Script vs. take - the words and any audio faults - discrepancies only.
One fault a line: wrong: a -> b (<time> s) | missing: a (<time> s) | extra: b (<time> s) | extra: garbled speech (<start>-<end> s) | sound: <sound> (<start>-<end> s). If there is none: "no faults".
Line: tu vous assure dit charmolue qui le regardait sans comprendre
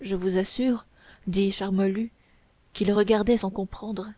wrong: tu -> je (0.0 s)